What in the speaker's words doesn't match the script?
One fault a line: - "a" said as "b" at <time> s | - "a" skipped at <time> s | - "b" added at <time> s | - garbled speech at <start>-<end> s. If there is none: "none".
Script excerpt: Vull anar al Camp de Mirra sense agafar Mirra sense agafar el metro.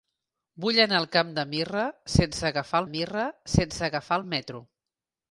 none